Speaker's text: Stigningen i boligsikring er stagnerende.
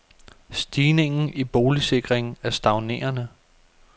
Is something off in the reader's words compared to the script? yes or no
no